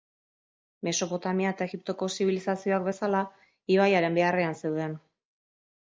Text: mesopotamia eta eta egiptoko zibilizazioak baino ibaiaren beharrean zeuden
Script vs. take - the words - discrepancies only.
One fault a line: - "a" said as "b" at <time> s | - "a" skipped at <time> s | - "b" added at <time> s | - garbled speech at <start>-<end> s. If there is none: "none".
- "eta" skipped at 1.7 s
- "baino" said as "bezala" at 2.9 s